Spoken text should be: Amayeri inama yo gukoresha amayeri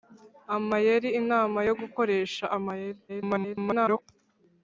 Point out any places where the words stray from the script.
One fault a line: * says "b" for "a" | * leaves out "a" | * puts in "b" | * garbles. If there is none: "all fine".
* garbles